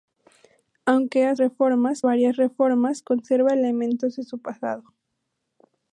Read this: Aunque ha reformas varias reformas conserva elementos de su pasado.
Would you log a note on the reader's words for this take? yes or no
no